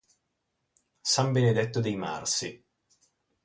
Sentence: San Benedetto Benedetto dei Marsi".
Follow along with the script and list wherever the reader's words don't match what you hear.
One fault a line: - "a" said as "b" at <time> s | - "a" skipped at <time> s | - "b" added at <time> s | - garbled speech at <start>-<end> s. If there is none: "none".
- "Benedetto" skipped at 1.8 s